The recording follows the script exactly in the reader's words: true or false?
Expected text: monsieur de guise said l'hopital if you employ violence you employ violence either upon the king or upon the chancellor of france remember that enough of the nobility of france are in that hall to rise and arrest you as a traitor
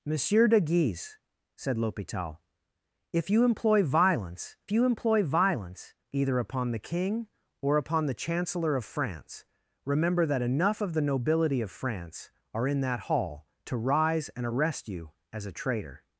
true